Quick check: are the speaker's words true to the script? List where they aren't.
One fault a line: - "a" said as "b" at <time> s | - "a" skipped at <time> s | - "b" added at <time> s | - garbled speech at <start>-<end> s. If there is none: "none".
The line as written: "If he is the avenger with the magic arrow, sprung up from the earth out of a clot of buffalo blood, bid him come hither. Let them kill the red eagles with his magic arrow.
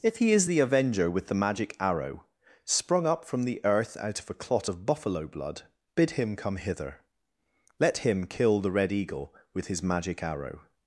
- "them" said as "him" at 8.0 s
- "eagles" said as "eagle" at 8.9 s